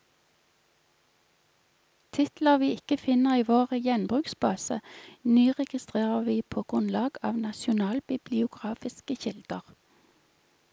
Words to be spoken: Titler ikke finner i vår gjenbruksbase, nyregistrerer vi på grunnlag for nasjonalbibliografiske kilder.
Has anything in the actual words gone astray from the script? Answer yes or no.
yes